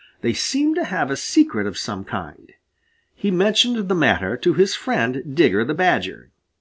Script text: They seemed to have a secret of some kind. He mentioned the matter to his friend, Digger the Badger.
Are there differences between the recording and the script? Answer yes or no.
no